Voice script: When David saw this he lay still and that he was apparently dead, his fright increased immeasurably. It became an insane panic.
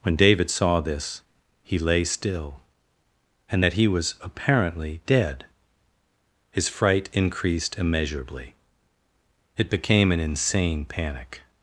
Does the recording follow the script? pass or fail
pass